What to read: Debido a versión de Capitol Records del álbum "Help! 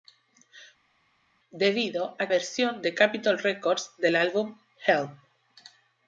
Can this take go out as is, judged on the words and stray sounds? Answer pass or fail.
pass